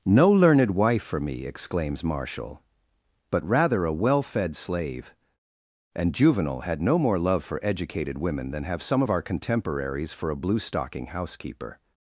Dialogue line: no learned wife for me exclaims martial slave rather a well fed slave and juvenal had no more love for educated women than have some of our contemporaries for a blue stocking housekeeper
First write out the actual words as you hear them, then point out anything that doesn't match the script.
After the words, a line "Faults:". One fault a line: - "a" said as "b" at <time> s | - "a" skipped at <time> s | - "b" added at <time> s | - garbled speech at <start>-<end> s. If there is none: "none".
no learned wife for me exclaims martial but rather a well fed slave and juvenal had no more love for educated women than have some of our contemporaries for a blue stocking housekeeper
Faults:
- "slave" said as "but" at 3.3 s